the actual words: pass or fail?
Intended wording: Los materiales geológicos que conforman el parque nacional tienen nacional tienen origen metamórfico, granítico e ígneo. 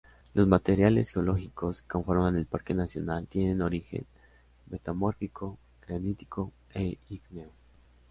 fail